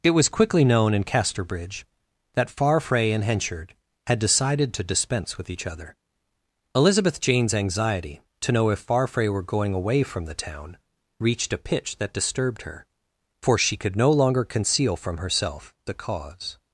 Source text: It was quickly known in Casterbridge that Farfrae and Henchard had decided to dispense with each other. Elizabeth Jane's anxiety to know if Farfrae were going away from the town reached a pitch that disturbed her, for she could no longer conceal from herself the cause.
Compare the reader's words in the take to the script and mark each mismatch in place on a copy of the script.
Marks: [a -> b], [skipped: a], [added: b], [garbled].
It was quickly known in Casterbridge that Farfrae and Henchard had decided to dispense with each other. Elizabeth Jane's anxiety to know if Farfrae were going away from the town reached a pitch that disturbed her, for she could no longer conceal from herself the cause.